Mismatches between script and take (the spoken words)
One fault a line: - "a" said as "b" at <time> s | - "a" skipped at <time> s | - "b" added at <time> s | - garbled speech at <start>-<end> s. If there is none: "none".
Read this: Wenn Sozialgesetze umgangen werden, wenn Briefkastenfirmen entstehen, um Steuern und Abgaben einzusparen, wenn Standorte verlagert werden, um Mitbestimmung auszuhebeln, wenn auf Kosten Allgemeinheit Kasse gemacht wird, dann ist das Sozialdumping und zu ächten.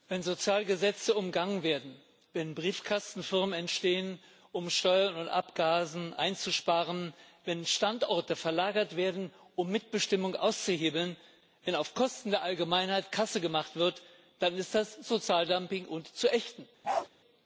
- "der" added at 12.3 s